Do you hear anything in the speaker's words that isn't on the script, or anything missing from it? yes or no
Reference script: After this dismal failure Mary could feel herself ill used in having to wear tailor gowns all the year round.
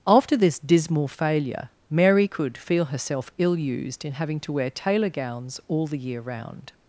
no